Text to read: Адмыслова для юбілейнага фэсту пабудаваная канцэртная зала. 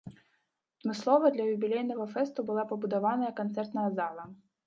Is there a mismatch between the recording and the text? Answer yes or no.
yes